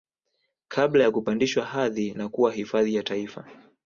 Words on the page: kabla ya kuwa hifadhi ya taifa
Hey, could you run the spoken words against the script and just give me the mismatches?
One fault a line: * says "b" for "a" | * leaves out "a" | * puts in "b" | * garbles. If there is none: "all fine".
* puts in "kupandishwa hadhi na"